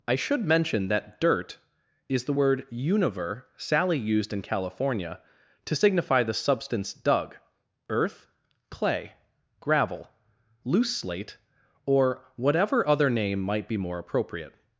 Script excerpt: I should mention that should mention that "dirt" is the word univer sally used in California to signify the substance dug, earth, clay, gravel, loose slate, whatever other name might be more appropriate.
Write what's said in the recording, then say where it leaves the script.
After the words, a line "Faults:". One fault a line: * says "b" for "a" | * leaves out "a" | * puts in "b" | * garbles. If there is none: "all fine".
I should mention that "dirt" is the word univer sally used in California to signify the substance dug, earth, clay, gravel, loose slate, or whatever other name might be more appropriate.
Faults:
* leaves out "should mention that"
* puts in "or"